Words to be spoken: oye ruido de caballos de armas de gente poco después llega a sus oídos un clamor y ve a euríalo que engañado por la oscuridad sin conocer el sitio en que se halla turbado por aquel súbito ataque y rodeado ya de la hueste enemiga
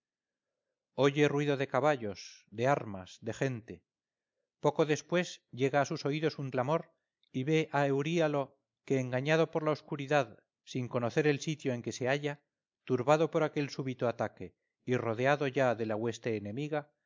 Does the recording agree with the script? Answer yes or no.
yes